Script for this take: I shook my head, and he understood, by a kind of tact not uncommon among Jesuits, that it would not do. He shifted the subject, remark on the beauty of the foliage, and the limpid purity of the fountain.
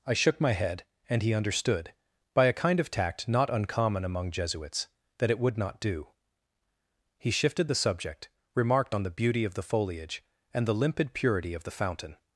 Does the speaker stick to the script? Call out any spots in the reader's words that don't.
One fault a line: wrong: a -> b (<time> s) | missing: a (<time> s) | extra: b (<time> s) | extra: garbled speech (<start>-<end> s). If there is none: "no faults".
wrong: remark -> remarked (8.5 s)